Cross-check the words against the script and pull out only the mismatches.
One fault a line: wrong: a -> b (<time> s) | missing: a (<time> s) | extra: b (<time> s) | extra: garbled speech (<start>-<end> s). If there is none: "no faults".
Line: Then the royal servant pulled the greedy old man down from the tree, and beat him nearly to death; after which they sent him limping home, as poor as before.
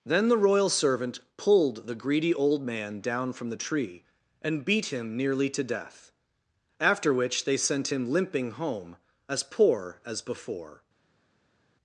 no faults